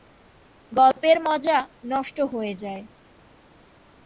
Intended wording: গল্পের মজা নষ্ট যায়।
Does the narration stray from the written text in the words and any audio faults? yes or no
yes